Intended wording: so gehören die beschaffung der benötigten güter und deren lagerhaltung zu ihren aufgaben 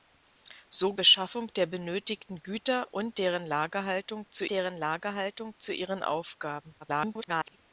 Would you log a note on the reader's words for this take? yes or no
yes